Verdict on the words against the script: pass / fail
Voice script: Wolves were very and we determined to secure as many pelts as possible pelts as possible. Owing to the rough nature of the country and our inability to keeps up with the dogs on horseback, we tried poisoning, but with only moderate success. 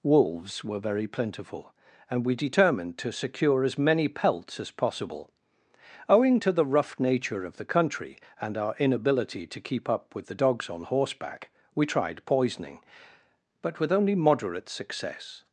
fail